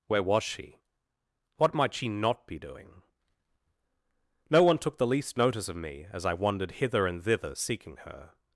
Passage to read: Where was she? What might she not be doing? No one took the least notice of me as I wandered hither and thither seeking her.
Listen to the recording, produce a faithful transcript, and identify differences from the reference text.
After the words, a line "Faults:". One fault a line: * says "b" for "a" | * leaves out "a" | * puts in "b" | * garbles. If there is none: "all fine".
Where was she? What might she not be doing? No one took the least notice of me as I wandered hither and thither seeking her.
Faults:
all fine